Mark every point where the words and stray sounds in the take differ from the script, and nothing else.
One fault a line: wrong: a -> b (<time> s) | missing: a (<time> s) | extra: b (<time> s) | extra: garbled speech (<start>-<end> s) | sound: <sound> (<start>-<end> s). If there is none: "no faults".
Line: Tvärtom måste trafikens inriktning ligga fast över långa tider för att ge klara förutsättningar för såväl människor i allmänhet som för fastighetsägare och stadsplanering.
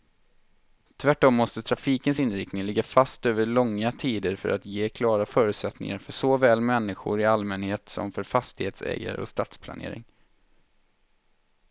no faults